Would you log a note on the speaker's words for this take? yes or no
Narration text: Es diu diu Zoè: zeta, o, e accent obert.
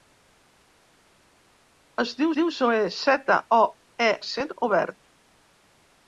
no